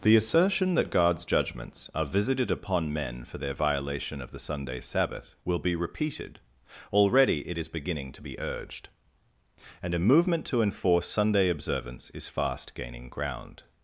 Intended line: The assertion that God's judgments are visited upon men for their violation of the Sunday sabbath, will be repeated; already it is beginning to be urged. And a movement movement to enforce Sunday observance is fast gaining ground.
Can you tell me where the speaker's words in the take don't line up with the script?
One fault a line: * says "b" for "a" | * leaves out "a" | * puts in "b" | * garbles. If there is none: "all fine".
* leaves out "movement"